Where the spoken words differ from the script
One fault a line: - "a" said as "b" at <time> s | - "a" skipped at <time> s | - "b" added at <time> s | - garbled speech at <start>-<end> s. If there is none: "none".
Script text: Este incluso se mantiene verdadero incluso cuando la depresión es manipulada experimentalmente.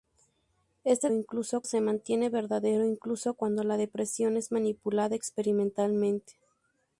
none